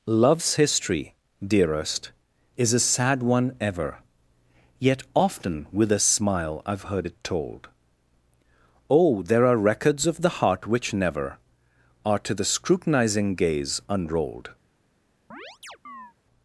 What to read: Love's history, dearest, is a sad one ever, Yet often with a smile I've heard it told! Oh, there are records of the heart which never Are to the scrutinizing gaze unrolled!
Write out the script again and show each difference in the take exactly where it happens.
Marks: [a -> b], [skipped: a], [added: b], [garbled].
Love's history, dearest, is a sad one ever, Yet often with a smile I've heard it told! Oh, there are records of the heart which never Are to the scrutinizing gaze unrolled!